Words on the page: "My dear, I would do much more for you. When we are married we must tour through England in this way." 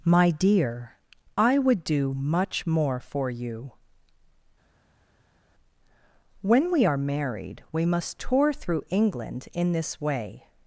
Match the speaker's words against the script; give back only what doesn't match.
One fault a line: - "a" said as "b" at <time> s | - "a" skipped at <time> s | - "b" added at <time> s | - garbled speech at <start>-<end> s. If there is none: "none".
none